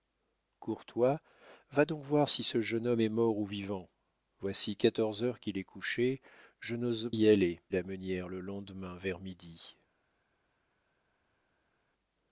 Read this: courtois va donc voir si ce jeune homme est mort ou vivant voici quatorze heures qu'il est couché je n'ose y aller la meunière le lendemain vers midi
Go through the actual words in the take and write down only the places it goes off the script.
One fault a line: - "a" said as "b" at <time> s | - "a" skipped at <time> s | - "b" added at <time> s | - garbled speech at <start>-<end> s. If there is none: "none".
none